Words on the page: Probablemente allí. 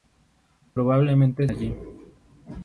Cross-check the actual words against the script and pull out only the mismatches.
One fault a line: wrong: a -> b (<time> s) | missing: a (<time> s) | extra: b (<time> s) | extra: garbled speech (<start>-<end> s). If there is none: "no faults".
no faults